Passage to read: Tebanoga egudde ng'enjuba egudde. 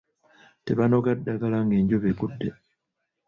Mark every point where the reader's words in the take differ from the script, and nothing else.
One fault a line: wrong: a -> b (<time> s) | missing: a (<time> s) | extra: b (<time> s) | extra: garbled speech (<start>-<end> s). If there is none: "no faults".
wrong: egudde -> ddagala (1.2 s)